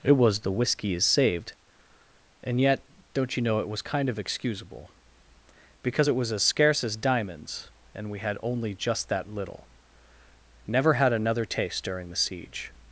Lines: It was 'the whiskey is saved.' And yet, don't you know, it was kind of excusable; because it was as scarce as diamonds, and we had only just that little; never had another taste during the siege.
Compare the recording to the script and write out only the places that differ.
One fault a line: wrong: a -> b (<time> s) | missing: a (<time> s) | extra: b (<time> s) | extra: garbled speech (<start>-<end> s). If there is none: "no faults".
no faults